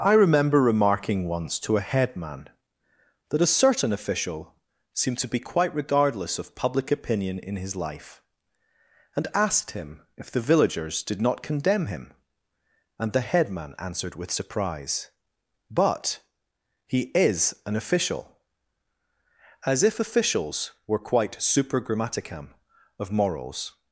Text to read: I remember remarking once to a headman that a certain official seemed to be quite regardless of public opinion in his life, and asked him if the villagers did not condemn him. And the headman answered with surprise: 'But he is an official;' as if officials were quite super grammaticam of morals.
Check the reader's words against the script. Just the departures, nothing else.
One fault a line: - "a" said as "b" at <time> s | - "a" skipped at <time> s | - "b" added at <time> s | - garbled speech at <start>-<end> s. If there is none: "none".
none